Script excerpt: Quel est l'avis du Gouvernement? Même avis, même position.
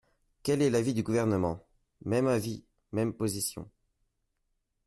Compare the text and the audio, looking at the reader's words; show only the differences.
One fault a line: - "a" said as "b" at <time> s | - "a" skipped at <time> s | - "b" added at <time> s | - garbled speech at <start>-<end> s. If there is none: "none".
none